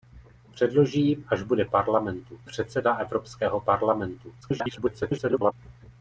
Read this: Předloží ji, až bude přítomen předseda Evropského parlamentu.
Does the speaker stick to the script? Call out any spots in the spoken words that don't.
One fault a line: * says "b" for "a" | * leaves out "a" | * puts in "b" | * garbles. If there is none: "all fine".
* says "parlamentu" for "přítomen"
* garbles